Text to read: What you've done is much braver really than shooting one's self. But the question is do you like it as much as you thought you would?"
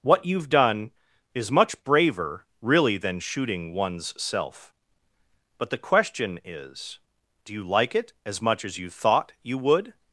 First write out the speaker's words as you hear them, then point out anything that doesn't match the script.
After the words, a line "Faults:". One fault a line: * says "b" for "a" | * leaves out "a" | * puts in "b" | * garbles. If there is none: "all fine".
What you've done is much braver really than shooting one's self. But the question is do you like it as much as you thought you would?"
Faults:
all fine